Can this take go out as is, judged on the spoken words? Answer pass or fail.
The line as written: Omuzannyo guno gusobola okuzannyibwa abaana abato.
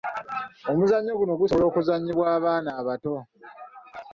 pass